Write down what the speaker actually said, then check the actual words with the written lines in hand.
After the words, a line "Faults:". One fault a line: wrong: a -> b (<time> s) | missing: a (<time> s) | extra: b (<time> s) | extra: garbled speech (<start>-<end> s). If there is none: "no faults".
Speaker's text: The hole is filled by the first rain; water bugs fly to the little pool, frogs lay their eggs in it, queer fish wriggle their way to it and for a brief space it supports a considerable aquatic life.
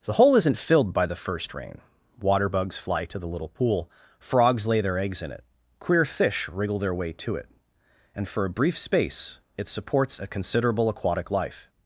The hole isn't filled by the first rain; water bugs fly to the little pool, frogs lay their eggs in it, queer fish wriggle their way to it and for a brief space it supports a considerable aquatic life.
Faults:
wrong: is -> isn't (0.3 s)